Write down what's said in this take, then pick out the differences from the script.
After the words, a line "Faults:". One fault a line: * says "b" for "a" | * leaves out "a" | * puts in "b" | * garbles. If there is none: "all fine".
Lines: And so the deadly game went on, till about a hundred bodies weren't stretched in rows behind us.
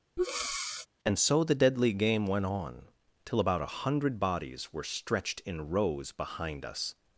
And so the deadly game went on, till about a hundred bodies were stretched in rows behind us.
Faults:
* says "were" for "weren't"